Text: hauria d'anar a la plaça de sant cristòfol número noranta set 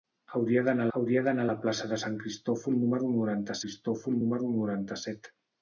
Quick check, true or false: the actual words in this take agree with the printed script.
false